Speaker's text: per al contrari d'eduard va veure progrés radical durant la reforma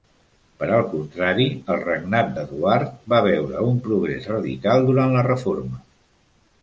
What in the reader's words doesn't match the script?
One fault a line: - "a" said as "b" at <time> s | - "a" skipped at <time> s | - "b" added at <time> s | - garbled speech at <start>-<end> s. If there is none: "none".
- "el regnat" added at 1.7 s
- "un" added at 3.7 s